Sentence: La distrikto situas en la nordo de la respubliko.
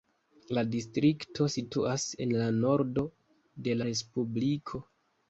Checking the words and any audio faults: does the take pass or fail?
fail